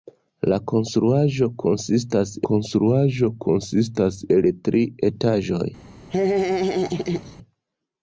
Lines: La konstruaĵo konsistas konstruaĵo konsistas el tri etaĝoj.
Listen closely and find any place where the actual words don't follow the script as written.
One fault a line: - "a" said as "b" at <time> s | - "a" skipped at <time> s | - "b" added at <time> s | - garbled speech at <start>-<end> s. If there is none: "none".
none